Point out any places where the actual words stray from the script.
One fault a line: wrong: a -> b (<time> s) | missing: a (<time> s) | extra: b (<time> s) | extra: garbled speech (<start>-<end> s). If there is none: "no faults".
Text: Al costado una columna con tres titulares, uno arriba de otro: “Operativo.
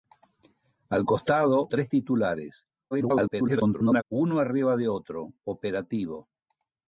missing: una columna con (1.7 s)
extra: garbled speech (2.9-4.0 s)